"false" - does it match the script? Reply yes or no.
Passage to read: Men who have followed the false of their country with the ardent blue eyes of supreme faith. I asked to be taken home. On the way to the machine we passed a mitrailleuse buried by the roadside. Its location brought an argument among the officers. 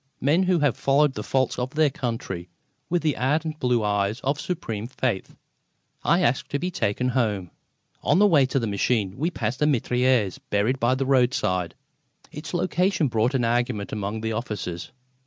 yes